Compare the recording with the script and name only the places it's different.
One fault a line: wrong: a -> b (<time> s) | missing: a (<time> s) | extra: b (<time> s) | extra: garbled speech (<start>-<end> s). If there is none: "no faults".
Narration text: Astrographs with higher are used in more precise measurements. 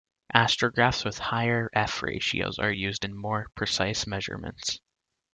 extra: f ratios (1.7 s)